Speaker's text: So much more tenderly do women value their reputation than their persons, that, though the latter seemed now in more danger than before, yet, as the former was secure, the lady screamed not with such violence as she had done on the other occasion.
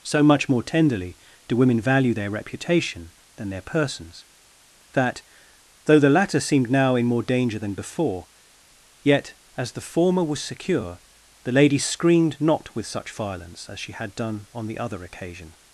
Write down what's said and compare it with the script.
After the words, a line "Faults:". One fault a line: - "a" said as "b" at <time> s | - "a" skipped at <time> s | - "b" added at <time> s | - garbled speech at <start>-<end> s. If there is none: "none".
So much more tenderly do women value their reputation than their persons, that, though the latter seemed now in more danger than before, yet, as the former was secure, the lady screamed not with such violence as she had done on the other occasion.
Faults:
none